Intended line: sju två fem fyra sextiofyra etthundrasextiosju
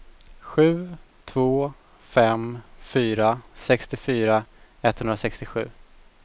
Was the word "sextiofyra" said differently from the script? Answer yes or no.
no